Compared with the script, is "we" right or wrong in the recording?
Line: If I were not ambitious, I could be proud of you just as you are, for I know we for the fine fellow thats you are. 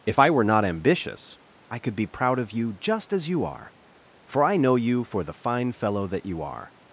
wrong